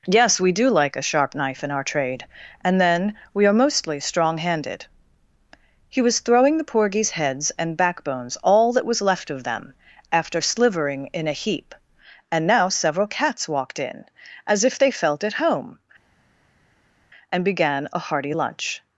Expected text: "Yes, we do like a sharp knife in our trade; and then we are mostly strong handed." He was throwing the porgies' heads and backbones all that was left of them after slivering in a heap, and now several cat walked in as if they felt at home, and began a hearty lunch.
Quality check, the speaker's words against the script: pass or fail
fail